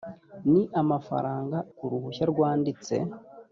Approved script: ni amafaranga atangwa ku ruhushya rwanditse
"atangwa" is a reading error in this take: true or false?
true